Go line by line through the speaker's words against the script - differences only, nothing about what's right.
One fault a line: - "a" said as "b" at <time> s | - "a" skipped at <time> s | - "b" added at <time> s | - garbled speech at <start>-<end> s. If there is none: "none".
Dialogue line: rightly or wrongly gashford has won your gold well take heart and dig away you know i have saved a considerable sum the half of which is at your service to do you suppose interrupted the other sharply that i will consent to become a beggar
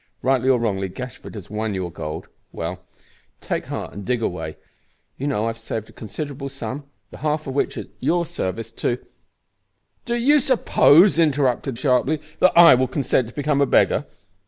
- "the other" skipped at 11.8 s